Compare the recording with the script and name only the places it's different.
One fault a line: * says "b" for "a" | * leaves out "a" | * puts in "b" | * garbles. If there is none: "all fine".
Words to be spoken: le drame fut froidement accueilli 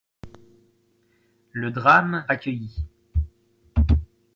* leaves out "fut froidement"